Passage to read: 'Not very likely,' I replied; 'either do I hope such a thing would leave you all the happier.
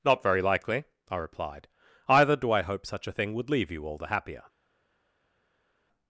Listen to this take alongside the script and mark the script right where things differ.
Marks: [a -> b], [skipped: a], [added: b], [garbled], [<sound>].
'Not very likely,' I replied; 'either do I hope such a thing would leave you all the happier.